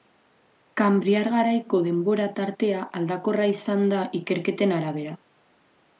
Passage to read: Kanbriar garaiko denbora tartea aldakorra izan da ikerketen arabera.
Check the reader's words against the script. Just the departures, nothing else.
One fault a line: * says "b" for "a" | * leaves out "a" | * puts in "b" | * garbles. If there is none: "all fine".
all fine